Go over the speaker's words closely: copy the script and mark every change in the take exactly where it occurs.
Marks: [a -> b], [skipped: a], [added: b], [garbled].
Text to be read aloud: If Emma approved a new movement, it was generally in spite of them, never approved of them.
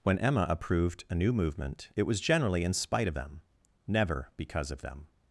[If -> When] Emma approved a new movement, it was generally in spite of them, never [approved -> because] of them.